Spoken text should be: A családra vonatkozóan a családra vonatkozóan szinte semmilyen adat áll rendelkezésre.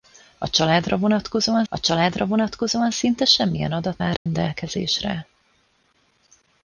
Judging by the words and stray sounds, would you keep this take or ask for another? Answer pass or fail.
fail